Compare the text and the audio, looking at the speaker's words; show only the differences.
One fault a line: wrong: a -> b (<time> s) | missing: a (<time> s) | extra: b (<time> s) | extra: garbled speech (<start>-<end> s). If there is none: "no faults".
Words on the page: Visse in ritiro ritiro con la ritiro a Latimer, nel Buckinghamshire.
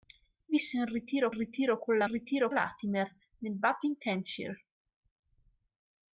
no faults